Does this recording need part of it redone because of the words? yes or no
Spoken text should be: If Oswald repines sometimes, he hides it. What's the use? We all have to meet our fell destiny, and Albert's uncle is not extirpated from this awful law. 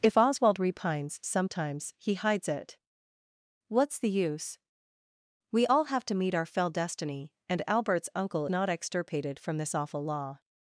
yes